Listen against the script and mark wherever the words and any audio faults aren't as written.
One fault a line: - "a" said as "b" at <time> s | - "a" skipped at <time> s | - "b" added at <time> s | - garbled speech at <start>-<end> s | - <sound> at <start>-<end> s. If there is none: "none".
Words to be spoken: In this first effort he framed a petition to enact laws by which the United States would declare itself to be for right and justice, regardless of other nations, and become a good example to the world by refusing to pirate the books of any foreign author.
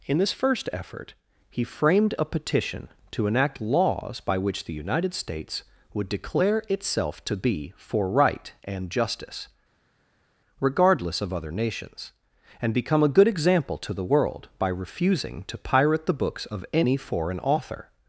none